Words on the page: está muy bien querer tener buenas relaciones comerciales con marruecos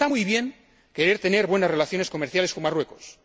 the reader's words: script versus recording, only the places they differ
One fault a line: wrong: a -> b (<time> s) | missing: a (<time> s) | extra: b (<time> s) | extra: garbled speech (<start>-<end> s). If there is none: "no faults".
no faults